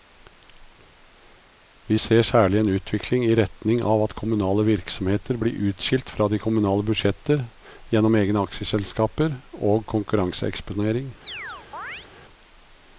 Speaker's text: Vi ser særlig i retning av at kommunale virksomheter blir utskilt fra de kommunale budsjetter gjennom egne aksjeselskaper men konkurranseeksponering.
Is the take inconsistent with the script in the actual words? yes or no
yes